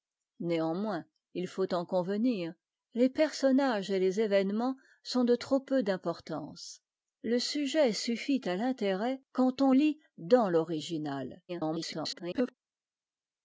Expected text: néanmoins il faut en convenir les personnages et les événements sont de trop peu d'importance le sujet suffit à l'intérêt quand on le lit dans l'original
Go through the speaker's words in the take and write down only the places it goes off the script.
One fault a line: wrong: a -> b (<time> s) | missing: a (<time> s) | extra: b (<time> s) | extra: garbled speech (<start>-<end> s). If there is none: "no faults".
missing: le (9.7 s)
extra: garbled speech (11.5-12.5 s)